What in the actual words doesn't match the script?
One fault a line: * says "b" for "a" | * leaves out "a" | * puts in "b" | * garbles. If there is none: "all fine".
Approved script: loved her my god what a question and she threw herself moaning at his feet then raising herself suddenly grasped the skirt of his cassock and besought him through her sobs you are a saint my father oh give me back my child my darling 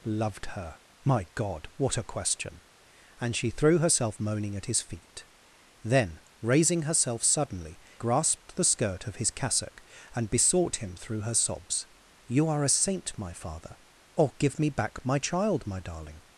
all fine